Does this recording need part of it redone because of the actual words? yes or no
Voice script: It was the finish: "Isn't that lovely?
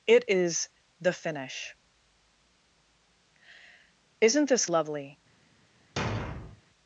yes